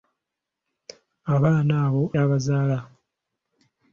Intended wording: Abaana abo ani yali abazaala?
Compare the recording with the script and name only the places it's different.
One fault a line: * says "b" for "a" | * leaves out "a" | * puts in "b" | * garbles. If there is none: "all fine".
* leaves out "ani yali"